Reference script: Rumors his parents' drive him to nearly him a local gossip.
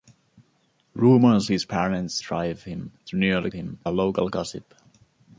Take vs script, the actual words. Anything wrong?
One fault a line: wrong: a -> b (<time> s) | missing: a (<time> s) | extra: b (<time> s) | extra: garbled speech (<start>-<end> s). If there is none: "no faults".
no faults